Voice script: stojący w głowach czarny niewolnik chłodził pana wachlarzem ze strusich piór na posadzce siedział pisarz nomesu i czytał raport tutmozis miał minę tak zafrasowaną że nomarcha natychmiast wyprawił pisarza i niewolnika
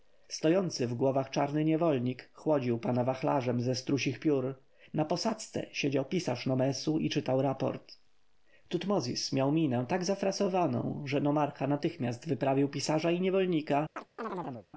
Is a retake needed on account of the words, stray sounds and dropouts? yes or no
yes